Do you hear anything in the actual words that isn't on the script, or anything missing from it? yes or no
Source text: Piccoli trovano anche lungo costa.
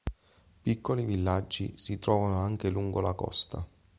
yes